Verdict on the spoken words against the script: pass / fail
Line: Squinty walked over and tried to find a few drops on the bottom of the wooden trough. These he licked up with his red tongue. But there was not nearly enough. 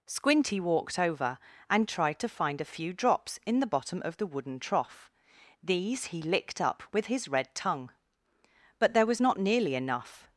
fail